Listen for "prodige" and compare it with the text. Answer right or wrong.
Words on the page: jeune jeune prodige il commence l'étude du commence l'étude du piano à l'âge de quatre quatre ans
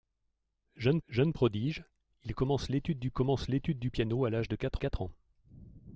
right